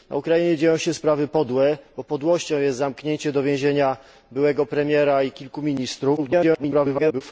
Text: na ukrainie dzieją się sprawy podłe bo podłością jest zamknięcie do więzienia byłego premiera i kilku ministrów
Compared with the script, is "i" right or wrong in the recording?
right